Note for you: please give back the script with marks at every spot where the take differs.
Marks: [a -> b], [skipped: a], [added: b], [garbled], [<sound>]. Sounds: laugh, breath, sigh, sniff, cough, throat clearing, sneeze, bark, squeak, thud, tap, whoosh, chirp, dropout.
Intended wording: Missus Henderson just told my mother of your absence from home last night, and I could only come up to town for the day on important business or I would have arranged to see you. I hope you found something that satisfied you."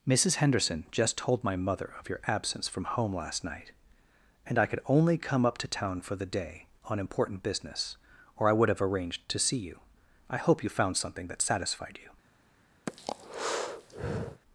Missus Henderson just told my mother of your absence from home last night, and I could only come up to town for the day on important business or I would have arranged to see you. I hope you found something that satisfied you." [breath]